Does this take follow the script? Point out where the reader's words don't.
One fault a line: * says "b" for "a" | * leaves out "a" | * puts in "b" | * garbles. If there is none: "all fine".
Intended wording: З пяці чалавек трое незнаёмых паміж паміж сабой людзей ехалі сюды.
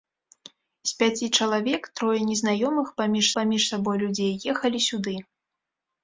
all fine